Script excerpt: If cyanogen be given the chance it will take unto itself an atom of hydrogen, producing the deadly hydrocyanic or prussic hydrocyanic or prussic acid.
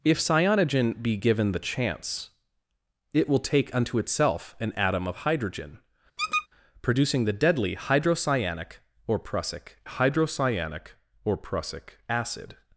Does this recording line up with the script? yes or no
yes